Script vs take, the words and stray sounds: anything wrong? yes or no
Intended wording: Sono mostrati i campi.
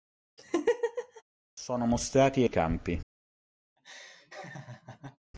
yes